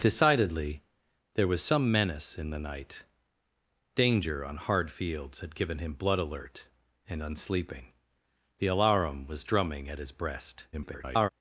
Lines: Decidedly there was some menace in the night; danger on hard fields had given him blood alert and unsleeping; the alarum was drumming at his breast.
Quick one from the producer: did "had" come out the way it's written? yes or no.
yes